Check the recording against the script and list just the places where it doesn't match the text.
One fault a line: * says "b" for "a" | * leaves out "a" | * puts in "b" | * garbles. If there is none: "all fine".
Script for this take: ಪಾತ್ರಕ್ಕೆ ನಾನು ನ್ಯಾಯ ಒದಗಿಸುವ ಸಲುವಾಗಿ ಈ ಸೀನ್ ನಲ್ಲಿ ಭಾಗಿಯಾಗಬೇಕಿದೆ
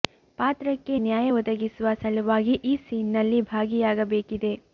* leaves out "ನಾನು"